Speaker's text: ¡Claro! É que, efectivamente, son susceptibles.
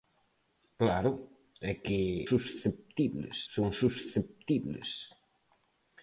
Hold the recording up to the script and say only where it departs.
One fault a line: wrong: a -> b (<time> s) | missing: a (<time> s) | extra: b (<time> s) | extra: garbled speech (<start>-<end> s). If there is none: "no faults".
wrong: efectivamente -> susceptibles (2.3 s)